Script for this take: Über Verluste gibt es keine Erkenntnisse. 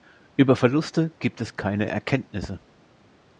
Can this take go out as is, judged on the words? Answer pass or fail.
pass